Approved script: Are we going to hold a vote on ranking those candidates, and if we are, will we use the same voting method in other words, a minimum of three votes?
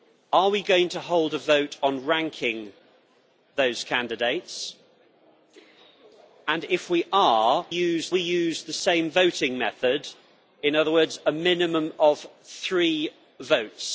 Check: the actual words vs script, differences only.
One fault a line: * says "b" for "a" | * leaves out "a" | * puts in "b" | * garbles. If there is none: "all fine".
* says "use" for "will"